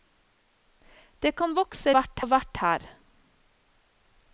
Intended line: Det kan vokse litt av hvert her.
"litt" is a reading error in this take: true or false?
true